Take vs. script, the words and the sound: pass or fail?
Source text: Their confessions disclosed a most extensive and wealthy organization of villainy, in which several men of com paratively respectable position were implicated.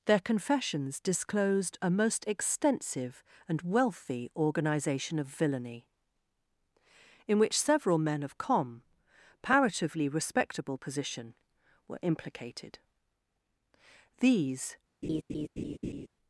fail